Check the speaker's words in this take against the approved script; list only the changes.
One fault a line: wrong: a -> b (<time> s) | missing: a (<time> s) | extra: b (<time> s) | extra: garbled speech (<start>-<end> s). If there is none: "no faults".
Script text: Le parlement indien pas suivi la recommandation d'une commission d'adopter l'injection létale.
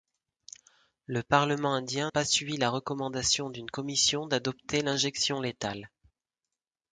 no faults